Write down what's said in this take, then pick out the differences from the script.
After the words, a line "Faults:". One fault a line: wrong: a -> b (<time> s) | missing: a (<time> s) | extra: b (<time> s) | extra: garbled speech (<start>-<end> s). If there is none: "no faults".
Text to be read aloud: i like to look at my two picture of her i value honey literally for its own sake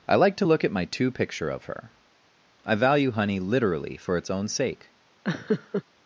i like to look at my two picture of her i value honey literally for its own sake
Faults:
no faults